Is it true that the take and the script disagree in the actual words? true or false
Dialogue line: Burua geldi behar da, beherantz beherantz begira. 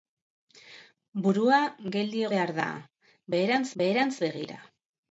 false